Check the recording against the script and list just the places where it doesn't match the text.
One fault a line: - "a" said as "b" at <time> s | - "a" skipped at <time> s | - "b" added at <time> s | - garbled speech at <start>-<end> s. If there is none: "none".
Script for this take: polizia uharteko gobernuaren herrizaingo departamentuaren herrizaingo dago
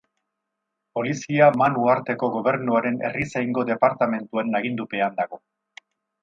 - "man" added at 1.6 s
- "herrizaingo" said as "agindupean" at 4.6 s